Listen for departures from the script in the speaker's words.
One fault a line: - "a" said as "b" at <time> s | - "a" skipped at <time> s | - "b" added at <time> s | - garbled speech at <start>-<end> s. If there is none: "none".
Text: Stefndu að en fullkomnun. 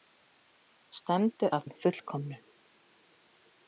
none